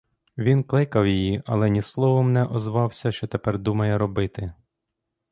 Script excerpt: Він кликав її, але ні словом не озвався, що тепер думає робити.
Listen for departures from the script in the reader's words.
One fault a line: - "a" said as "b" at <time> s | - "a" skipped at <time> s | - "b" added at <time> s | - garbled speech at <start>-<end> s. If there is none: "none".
none